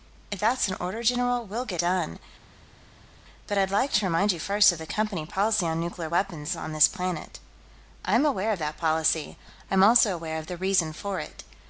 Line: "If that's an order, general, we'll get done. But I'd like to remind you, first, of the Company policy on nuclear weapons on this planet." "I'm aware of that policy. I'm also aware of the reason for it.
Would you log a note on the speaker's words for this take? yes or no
no